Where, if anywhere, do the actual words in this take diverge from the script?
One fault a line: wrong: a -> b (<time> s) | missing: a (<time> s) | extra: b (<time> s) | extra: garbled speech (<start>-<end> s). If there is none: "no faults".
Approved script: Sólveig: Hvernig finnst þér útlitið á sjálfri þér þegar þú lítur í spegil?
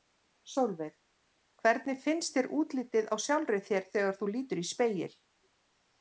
no faults